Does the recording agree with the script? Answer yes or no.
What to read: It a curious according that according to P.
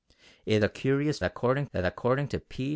yes